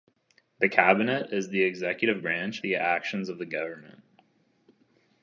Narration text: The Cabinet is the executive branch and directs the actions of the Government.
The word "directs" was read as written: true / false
false